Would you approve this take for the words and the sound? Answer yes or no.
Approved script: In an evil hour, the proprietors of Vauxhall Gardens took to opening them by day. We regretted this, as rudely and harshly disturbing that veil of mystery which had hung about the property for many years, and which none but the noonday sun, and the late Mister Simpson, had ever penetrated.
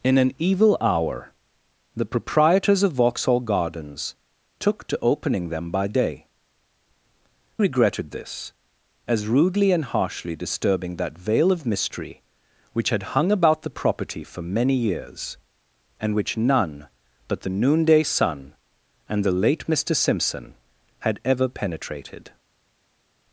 no